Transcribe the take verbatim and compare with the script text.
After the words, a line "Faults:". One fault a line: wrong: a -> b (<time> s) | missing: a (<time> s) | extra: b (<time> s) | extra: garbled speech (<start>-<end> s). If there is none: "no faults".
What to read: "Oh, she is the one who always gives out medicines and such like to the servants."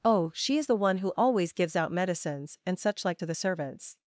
"Oh, she is the one who always gives out medicines and such like to the servants."
Faults:
no faults